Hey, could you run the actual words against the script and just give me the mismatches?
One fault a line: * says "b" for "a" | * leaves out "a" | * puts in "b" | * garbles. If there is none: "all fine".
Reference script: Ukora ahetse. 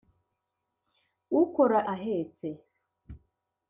all fine